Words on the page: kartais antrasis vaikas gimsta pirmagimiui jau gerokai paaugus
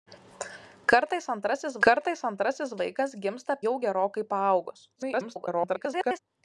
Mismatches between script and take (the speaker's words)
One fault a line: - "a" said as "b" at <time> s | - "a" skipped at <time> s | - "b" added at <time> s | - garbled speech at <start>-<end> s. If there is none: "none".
- "kartais antrasis" added at 1.9 s
- "pirmagimiui" skipped at 3.6 s
- garbled speech at 5.0-6.2 s